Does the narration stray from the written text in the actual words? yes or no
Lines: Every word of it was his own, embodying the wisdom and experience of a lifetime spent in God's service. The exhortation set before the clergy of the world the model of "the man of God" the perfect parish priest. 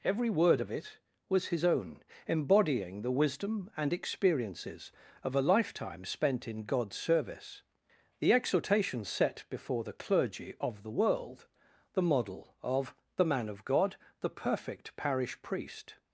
yes